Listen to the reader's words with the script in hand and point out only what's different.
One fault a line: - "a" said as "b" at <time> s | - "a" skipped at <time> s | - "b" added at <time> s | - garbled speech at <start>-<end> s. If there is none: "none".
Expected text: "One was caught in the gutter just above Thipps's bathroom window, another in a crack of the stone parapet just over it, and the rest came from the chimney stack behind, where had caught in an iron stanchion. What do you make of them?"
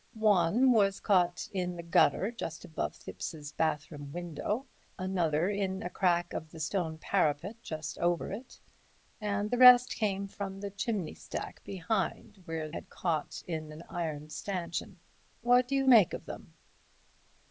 none